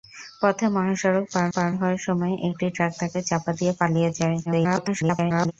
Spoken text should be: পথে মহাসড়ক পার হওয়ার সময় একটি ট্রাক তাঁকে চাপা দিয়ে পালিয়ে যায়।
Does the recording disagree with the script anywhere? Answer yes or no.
yes